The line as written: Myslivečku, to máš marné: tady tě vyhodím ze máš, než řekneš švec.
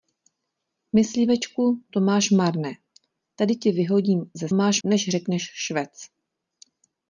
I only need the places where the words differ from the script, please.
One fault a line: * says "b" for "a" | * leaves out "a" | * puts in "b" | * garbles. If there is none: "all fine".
all fine